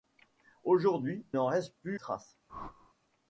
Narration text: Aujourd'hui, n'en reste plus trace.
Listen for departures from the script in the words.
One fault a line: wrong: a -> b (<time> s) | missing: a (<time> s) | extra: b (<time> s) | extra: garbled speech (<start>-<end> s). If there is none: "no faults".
no faults